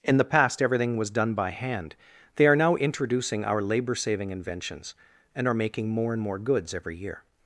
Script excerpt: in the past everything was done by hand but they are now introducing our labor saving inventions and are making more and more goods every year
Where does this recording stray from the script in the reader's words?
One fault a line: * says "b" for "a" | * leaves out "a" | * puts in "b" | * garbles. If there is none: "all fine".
* leaves out "but"